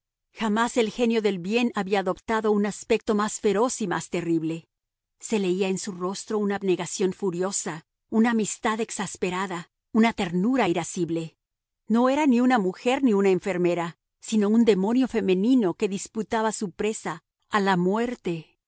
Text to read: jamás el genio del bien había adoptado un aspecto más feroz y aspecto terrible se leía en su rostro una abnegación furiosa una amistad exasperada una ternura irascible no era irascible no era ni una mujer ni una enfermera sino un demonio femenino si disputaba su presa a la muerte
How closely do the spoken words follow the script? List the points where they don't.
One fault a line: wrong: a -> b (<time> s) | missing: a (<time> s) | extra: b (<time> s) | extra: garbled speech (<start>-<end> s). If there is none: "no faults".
wrong: aspecto -> más (3.9 s)
missing: irascible no era (12.3 s)
wrong: si -> que (15.7 s)